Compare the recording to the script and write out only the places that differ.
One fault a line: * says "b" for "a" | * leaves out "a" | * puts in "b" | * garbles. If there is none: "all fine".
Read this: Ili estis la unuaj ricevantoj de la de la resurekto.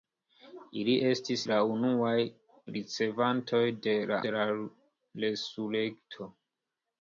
all fine